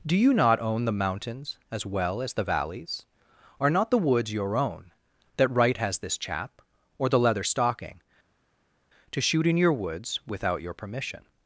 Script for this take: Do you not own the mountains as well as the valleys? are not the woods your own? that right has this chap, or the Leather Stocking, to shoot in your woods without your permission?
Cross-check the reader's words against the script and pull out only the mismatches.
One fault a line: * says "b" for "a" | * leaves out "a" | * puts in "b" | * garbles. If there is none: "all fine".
all fine